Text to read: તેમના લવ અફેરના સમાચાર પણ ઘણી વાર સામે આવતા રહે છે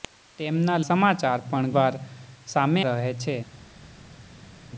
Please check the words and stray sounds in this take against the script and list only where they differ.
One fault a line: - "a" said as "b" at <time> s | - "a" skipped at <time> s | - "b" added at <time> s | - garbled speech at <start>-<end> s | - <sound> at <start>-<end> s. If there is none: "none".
- "લવ અફેરના" skipped at 0.8 s
- "ઘણી" skipped at 1.8 s
- "આવતા" skipped at 2.8 s